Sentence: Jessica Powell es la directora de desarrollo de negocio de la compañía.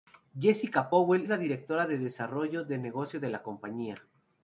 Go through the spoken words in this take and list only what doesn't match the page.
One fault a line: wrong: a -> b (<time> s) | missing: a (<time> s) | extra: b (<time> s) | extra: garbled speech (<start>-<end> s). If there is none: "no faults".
missing: es (1.3 s)